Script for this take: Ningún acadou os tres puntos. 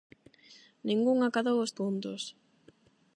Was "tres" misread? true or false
true